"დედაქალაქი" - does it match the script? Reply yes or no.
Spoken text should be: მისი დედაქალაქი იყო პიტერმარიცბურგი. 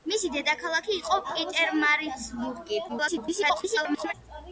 yes